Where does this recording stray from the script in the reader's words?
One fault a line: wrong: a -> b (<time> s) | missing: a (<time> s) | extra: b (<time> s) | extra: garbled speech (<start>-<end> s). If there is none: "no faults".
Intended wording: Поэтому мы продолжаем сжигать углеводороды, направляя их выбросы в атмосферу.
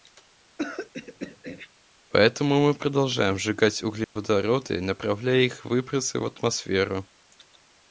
no faults